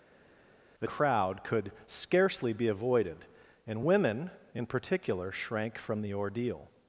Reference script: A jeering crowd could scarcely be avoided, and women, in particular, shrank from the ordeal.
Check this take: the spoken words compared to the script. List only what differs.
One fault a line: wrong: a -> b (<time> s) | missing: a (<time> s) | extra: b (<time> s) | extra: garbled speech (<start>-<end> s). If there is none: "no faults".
missing: jeering (0.9 s)